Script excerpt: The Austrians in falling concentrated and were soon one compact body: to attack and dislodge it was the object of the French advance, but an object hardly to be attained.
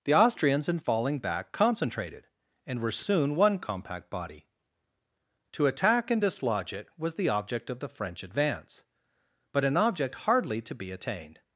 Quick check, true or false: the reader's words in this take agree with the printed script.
false